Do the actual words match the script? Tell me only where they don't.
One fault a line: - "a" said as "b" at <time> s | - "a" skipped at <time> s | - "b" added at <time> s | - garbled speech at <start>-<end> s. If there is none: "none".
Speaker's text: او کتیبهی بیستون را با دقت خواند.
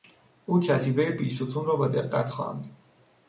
none